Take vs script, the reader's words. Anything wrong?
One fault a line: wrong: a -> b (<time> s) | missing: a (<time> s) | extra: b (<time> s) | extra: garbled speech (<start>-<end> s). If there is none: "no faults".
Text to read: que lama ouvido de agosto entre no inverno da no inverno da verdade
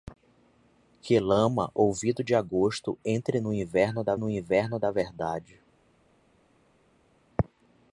no faults